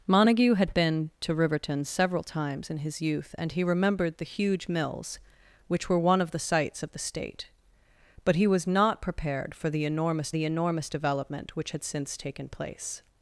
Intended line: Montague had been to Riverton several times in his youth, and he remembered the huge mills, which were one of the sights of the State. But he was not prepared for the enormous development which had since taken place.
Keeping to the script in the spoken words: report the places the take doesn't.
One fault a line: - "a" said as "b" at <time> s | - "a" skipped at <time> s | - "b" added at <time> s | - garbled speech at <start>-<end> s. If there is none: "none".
- "the enormous" added at 10.3 s